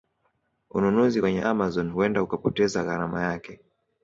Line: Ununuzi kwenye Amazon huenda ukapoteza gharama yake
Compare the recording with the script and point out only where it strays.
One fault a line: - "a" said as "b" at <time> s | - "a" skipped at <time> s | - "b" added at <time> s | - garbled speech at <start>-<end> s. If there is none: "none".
none